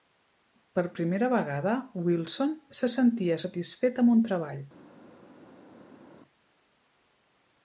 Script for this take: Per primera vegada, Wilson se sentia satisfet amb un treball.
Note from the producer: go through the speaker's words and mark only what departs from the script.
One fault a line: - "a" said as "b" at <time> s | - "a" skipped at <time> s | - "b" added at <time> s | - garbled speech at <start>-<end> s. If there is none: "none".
none